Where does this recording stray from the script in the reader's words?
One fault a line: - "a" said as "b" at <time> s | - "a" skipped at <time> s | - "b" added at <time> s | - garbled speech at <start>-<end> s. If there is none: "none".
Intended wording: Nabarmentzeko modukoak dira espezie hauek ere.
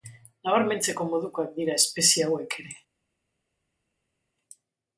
none